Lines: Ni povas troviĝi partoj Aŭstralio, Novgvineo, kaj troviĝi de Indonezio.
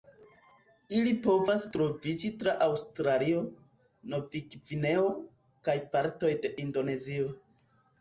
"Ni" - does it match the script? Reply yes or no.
no